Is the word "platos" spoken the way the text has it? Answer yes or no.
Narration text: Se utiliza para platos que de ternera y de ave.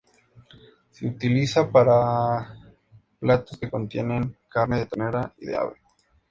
yes